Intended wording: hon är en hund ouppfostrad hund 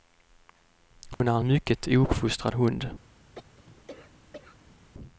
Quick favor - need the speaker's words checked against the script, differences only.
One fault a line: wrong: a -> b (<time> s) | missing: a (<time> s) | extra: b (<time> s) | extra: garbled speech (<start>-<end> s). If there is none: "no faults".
wrong: hund -> mycket (1.5 s)